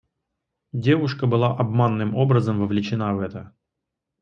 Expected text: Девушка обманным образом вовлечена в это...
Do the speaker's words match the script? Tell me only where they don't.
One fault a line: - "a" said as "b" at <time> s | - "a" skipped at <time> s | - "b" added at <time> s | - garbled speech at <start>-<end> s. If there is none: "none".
- "была" added at 1.3 s